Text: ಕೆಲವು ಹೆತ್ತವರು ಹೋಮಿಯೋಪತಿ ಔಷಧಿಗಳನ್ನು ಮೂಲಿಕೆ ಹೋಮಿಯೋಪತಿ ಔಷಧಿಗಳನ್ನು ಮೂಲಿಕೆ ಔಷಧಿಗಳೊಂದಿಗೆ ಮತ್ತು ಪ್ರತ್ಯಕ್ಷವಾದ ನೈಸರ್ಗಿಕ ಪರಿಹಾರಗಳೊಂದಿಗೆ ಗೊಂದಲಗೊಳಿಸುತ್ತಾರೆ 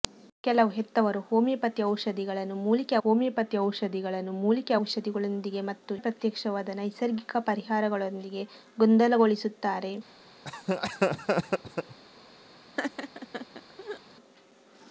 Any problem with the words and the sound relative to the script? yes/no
yes